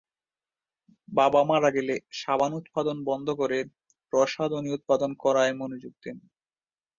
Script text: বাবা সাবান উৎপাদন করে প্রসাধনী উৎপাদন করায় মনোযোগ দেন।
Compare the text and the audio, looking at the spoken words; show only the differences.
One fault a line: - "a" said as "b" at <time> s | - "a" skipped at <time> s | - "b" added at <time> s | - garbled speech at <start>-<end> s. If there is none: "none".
- "মারা গেলে" added at 1.4 s
- "বন্ধ" added at 3.0 s